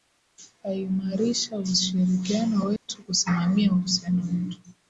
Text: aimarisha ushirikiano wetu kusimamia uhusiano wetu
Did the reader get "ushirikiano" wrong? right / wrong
right